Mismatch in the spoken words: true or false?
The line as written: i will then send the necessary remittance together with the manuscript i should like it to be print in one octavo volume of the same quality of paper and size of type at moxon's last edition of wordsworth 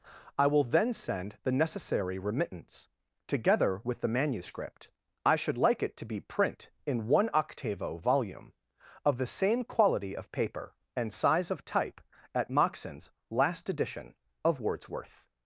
false